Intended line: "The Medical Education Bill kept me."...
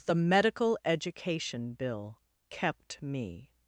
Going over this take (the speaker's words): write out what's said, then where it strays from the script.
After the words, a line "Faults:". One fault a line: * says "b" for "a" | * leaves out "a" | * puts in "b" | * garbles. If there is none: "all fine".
"The Medical Education Bill kept me."...
Faults:
all fine